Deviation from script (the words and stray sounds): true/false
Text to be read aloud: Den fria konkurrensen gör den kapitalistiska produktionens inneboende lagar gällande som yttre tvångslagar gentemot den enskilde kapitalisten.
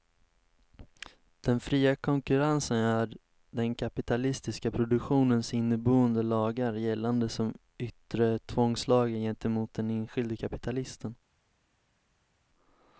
false